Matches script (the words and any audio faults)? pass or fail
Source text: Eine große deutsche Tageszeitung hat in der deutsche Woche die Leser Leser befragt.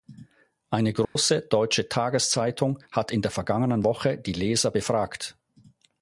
fail